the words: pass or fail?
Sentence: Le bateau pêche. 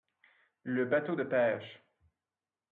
fail